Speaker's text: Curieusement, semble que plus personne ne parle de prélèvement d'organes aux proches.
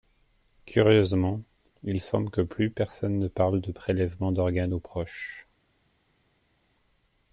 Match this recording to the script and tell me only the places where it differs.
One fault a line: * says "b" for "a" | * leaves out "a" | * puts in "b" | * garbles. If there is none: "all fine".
* puts in "il"